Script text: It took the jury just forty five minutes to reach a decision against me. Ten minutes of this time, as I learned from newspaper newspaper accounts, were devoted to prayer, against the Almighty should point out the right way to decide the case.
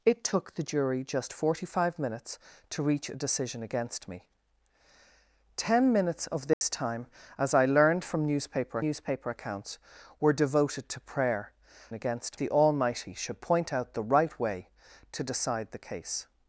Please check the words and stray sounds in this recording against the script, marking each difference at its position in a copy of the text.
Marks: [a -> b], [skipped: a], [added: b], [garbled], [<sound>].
It took the jury just forty five minutes to reach a decision against me. Ten minutes of this [dropout] time, as I learned from newspaper newspaper accounts, were devoted to prayer, against the Almighty should point out the right way to decide the case.